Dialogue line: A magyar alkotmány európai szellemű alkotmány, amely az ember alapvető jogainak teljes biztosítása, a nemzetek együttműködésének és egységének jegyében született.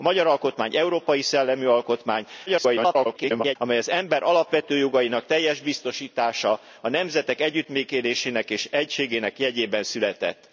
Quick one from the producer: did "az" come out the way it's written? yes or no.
yes